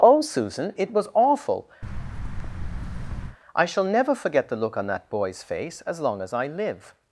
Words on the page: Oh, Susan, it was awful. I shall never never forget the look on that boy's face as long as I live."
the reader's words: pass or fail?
fail